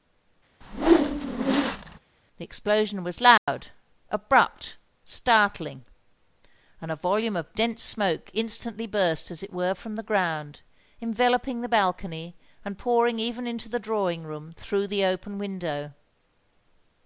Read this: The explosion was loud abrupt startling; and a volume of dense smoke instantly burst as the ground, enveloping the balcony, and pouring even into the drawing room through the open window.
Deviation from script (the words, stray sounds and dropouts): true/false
true